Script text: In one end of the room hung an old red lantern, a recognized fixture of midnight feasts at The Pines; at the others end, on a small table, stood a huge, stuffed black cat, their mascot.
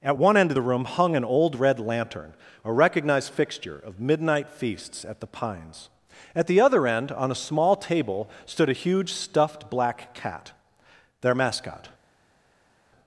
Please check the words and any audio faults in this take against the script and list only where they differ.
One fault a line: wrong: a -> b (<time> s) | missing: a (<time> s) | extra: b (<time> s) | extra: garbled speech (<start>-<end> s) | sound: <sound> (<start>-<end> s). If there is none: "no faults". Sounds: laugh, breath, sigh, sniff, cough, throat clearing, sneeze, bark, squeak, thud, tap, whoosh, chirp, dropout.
wrong: In -> At (0.0 s)
wrong: others -> other (6.6 s)